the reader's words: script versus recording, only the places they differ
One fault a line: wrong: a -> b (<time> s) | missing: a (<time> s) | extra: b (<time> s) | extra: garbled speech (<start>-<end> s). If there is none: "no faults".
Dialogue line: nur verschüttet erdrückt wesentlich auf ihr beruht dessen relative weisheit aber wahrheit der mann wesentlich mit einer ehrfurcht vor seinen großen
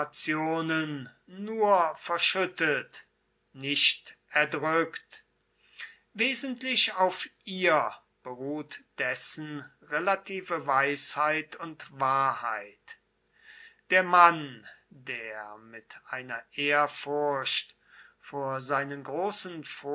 extra: nicht (3.5 s)
wrong: aber -> und (11.6 s)
wrong: wesentlich -> der (14.9 s)